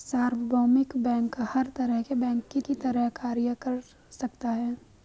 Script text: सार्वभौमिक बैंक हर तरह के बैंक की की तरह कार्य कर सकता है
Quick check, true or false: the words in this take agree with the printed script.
true